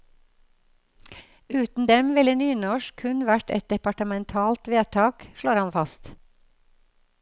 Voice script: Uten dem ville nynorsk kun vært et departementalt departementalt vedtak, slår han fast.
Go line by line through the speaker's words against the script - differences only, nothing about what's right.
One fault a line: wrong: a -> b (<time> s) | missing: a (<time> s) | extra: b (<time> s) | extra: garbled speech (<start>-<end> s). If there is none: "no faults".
missing: departementalt (4.7 s)